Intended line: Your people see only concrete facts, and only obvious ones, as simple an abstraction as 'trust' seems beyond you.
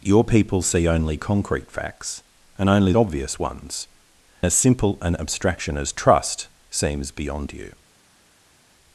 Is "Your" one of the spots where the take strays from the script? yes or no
no